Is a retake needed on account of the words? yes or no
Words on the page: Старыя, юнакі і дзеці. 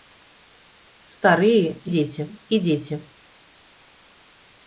yes